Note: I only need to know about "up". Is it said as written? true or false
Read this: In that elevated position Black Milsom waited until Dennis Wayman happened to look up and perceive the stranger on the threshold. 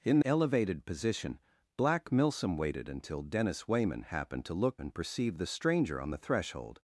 false